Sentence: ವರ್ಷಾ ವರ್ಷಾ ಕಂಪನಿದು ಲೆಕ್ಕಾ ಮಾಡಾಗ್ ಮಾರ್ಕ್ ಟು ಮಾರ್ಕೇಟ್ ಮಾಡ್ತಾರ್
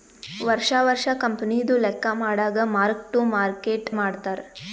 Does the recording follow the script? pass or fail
pass